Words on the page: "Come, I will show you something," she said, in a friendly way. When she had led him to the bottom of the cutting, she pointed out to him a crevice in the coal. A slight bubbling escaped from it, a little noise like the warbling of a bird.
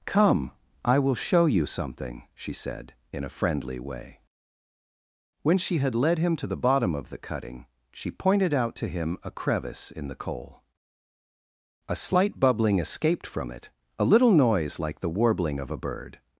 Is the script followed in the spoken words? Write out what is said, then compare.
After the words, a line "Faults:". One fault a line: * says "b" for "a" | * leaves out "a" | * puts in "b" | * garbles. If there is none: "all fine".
"Come, I will show you something," she said, in a friendly way. When she had led him to the bottom of the cutting, she pointed out to him a crevice in the coal. A slight bubbling escaped from it, a little noise like the warbling of a bird.
Faults:
all fine